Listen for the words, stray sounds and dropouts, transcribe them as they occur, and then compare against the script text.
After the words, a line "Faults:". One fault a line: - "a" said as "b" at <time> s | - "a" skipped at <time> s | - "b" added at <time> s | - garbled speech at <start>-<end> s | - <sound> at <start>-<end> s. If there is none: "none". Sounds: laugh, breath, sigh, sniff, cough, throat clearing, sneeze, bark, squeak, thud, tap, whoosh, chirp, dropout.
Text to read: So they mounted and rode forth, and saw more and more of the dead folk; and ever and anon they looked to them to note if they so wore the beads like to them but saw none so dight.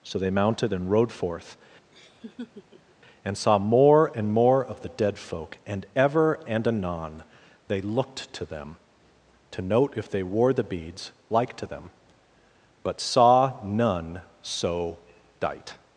So they mounted and rode forth, and saw more and more of the dead folk; and ever and anon they looked to them to note if they wore the beads like to them but saw none so dight.
Faults:
- laugh at 1.9-3.0 s
- "so" skipped at 10.2 s